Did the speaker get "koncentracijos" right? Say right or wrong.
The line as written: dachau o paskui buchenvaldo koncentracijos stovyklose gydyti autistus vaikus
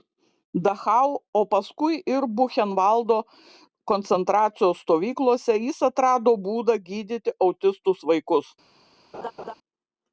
right